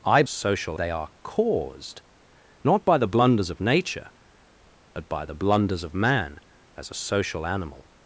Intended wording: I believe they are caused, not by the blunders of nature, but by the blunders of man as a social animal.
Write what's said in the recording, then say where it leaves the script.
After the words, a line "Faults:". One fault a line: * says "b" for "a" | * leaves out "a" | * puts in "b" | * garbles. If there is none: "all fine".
I social they are caused, not by the blunders of nature, but by the blunders of man as a social animal.
Faults:
* says "social" for "believe"